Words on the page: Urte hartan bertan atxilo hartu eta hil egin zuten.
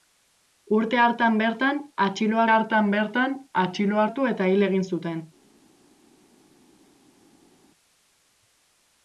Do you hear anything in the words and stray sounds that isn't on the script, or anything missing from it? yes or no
yes